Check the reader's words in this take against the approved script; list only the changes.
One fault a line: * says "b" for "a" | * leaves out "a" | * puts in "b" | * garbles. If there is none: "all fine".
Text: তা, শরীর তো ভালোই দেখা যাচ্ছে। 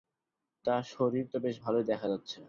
* puts in "বেশ"